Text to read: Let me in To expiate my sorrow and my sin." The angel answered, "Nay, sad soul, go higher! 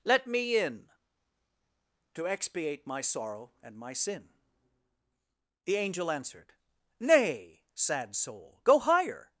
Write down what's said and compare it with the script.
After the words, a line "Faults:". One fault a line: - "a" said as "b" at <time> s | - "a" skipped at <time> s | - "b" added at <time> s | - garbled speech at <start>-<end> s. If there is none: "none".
Let me in To expiate my sorrow and my sin." The angel answered, "Nay, sad soul, go higher!
Faults:
none